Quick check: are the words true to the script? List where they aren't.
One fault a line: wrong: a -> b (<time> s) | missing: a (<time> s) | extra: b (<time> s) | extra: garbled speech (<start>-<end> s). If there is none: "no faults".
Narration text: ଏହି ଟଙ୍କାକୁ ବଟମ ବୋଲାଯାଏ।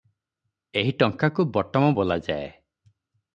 no faults